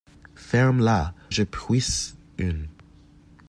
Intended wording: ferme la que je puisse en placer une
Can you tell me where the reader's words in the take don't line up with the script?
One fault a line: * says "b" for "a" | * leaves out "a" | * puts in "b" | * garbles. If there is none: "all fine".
* leaves out "que"
* leaves out "en placer"